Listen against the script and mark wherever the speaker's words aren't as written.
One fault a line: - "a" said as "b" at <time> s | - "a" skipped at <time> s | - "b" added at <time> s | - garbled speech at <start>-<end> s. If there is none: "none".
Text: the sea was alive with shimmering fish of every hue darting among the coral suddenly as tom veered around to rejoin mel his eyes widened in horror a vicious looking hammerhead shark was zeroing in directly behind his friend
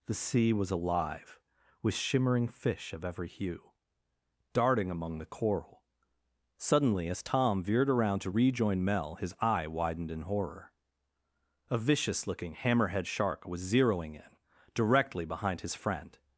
- "eyes" said as "eye" at 9.4 s